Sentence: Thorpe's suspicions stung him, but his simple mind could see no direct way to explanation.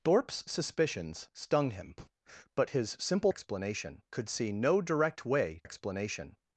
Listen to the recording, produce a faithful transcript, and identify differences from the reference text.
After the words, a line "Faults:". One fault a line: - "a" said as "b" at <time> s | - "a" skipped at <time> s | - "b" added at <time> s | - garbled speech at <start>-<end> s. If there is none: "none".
Thorpe's suspicions stung him, but his simple explanation could see no direct way explanation.
Faults:
- "mind" said as "explanation" at 3.3 s
- "to" skipped at 5.6 s